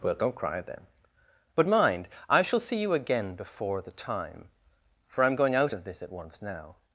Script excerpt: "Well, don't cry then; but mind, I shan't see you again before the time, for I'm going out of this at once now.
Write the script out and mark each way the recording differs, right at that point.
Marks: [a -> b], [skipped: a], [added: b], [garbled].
"Well, don't cry then; but mind, I [shan't -> shall] see you again before the time, for I'm going out of this at once now.